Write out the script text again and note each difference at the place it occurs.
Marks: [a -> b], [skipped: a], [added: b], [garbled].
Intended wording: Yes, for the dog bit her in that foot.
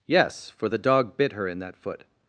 Yes, for the dog bit her in that foot.